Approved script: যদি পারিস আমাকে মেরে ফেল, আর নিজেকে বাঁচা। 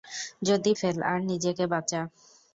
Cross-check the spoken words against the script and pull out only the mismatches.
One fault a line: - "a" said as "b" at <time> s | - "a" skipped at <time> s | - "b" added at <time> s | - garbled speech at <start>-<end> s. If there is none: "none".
- "পারিস আমাকে মেরে" skipped at 0.7 s